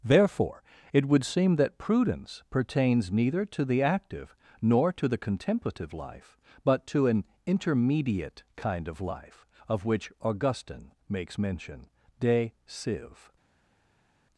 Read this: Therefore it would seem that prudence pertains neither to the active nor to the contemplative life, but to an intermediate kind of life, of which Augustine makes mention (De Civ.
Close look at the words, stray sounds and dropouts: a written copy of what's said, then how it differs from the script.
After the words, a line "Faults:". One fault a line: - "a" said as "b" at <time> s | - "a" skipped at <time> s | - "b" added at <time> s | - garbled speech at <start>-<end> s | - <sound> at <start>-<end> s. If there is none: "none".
Therefore it would seem that prudence pertains neither to the active nor to the contemplative life, but to an intermediate kind of life, of which Augustine makes mention (De Civ.
Faults:
none